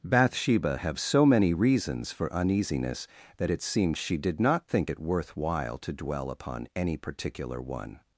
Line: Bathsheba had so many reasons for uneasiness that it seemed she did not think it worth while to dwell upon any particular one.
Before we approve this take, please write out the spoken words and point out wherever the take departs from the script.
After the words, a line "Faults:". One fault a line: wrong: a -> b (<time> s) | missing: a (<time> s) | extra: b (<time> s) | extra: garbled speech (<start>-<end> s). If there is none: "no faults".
Bathsheba have so many reasons for uneasiness that it seemed she did not think it worth while to dwell upon any particular one.
Faults:
wrong: had -> have (0.8 s)